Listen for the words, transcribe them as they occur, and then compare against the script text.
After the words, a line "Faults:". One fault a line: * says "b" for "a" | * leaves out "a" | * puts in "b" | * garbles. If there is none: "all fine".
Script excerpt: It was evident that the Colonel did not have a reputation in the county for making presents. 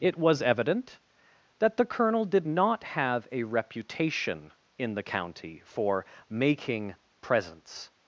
It was evident that the Colonel did not have a reputation in the county for making presents.
Faults:
all fine